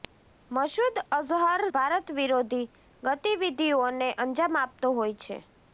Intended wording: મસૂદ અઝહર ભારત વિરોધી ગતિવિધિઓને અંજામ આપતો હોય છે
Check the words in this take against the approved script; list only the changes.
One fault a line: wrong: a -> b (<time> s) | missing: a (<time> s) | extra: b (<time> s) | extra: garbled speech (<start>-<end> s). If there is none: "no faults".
no faults